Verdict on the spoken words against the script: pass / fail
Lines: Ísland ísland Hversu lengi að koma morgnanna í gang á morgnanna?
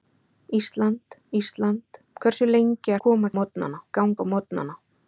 pass